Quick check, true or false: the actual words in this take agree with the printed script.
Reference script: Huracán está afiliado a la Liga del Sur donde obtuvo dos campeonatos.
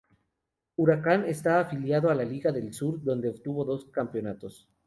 true